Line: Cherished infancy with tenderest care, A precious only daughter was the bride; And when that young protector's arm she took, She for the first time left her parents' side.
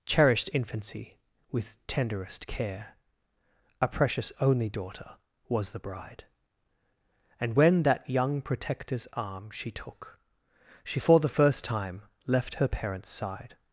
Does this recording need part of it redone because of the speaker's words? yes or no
no